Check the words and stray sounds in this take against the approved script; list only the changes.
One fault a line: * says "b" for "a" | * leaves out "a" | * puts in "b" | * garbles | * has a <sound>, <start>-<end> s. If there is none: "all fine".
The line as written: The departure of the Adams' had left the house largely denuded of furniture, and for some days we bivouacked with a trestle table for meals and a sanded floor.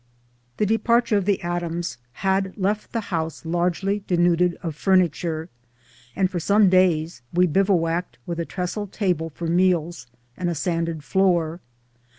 all fine